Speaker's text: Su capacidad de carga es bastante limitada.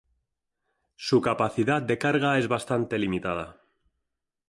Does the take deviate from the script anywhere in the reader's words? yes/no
no